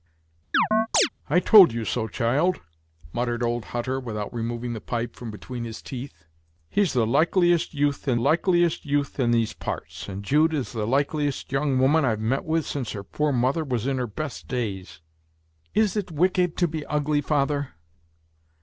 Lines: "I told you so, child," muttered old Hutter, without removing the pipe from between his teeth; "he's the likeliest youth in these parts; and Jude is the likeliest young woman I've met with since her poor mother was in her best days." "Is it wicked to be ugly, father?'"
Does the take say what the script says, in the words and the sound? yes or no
no